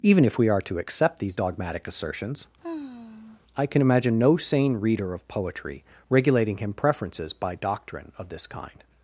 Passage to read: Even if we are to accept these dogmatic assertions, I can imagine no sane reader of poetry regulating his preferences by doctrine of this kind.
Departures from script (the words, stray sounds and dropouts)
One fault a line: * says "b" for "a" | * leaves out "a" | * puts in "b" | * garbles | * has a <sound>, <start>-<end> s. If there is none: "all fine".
* has a sigh, 2.6-3.4 s
* says "him" for "his"